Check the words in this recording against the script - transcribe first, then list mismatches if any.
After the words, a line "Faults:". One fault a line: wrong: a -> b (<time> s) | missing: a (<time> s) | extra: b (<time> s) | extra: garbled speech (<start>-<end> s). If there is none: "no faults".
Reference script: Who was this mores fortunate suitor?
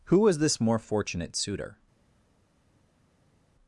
Who was this more fortunate suitor?
Faults:
wrong: mores -> more (0.6 s)